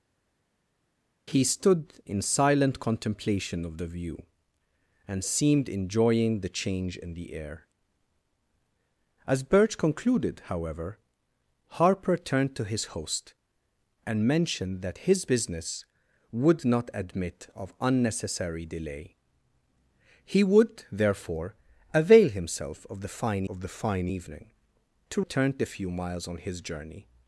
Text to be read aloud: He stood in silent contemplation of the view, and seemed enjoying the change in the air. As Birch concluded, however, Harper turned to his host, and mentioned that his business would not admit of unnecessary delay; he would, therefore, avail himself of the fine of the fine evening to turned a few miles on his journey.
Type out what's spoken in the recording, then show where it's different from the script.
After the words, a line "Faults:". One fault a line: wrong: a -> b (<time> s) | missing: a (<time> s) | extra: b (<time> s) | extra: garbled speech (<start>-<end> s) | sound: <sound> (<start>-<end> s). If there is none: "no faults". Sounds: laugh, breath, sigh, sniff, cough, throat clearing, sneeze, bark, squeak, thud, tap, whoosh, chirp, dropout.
He stood in silent contemplation of the view, and seemed enjoying the change in the air. As Birch concluded, however, Harper turned to his host, and mentioned that his business would not admit of unnecessary delay; he would, therefore, avail himself of the fine of the fine evening to turned a few miles on his journey.
Faults:
no faults